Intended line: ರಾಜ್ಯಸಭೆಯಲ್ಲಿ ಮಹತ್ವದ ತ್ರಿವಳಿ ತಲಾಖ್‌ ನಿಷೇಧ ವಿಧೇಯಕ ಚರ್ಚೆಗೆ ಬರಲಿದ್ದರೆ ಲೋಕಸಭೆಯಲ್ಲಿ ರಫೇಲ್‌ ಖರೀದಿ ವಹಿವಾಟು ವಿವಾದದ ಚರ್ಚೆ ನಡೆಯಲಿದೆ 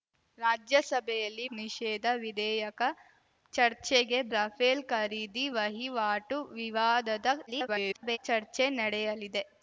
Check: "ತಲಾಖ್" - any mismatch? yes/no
yes